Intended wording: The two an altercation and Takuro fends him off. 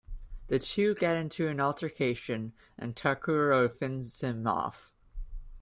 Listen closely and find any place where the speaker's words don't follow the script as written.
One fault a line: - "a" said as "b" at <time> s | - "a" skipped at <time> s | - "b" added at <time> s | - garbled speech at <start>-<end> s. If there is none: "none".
- "get into" added at 0.9 s